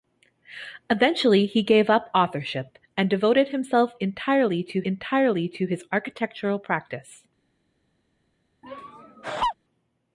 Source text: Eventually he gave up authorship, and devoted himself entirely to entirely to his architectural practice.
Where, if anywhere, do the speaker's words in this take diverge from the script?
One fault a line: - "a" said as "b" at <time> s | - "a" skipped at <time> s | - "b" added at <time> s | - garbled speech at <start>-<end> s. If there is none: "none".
none